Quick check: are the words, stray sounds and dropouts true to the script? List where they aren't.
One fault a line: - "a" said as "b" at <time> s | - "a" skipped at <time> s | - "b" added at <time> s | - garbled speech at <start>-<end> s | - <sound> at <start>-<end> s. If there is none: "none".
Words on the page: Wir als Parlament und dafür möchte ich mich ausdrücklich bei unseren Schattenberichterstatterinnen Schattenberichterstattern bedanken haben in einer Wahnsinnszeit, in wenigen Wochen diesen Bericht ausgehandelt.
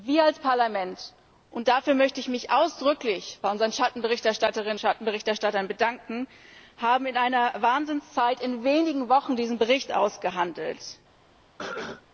- cough at 11.6-12.1 s